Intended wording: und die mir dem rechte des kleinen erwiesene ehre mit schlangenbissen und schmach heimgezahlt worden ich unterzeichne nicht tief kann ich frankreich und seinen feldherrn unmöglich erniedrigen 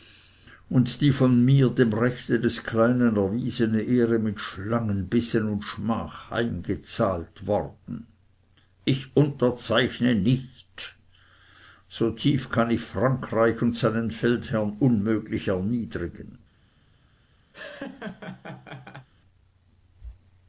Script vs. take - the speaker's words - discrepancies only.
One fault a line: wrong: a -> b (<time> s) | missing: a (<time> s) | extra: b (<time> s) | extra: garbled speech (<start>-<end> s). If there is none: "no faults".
extra: von (1.1 s)
extra: so (11.9 s)